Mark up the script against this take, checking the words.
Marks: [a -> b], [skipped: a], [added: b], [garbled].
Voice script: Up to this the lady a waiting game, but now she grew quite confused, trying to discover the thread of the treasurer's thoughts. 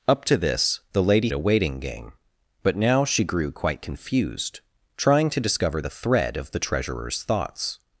Up to this the lady a waiting game, but now she grew quite confused, trying to discover the thread of the treasurer's thoughts.